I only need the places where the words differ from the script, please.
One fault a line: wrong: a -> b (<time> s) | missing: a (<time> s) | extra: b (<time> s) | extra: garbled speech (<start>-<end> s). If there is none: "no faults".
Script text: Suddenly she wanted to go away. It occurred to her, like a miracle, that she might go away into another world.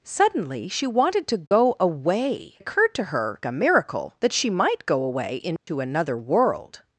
missing: It (2.5 s)
missing: like (3.4 s)